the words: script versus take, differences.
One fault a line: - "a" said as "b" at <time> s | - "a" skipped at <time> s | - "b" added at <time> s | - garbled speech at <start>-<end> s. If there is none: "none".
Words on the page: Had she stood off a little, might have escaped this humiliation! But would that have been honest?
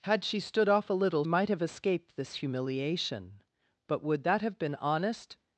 none